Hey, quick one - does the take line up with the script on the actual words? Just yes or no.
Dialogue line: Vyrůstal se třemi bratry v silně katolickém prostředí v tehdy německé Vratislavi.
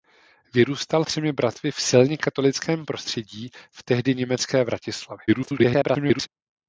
no